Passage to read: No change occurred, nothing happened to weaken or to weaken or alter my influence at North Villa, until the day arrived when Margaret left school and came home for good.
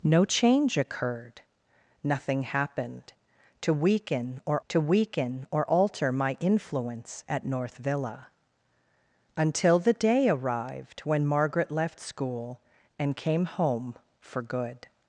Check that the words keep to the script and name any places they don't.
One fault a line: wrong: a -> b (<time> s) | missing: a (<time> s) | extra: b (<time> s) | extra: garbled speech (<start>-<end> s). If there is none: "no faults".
no faults